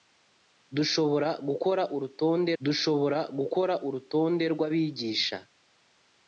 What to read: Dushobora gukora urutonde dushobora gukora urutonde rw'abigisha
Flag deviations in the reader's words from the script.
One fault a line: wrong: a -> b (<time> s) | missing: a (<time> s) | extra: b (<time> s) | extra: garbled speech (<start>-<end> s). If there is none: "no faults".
no faults